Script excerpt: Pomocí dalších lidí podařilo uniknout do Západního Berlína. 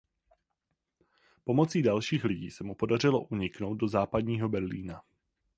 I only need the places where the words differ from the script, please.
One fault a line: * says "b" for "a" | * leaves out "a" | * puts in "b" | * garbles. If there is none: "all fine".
* puts in "se mu"